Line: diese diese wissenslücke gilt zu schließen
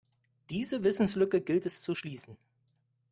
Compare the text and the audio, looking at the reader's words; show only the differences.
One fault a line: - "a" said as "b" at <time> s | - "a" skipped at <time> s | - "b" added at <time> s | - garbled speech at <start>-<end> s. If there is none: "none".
- "diese" skipped at 0.8 s
- "es" added at 1.7 s